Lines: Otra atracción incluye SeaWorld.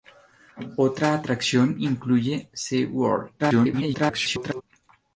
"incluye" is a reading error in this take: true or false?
false